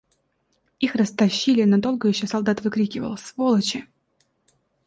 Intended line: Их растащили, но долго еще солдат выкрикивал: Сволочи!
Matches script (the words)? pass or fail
pass